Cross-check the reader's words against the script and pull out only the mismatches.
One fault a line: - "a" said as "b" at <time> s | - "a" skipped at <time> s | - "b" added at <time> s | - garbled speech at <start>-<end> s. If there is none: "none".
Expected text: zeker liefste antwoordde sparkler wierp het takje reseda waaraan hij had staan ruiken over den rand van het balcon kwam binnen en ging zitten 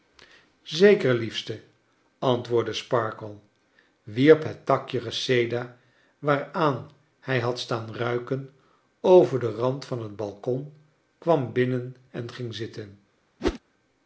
none